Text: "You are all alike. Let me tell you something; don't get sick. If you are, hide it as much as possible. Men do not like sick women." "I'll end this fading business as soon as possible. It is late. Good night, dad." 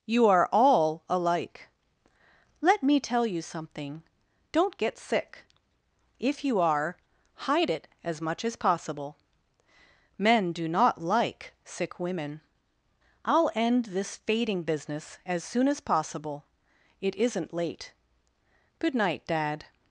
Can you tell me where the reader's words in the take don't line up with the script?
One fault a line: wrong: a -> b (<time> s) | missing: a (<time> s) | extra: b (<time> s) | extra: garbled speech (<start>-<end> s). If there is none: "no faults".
wrong: is -> isn't (17.1 s)